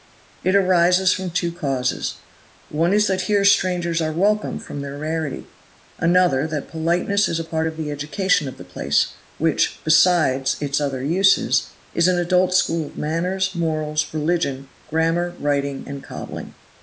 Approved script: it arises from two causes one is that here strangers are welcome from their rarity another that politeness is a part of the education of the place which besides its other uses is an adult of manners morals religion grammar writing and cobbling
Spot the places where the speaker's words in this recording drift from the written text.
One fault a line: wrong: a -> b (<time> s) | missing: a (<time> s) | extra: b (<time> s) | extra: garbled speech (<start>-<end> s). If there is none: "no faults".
extra: school (12.5 s)